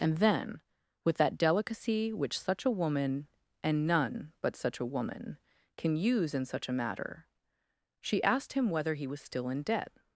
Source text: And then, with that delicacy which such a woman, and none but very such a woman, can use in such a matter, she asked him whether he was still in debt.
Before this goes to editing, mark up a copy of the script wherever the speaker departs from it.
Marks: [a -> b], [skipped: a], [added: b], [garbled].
And then, with that delicacy which such a woman, and none but [skipped: very] such a woman, can use in such a matter, she asked him whether he was still in debt.